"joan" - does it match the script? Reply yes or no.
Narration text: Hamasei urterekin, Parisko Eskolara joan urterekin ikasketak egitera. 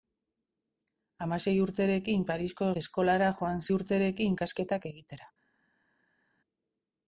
yes